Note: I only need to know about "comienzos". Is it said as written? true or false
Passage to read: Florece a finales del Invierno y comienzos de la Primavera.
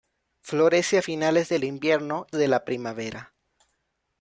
false